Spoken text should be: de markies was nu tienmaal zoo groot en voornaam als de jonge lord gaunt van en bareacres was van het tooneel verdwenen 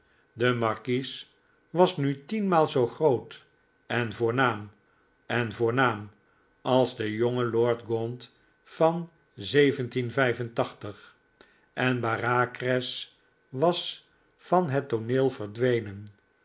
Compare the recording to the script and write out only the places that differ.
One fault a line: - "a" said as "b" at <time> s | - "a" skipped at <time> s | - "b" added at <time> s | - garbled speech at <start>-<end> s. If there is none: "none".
- "en voornaam" added at 5.2 s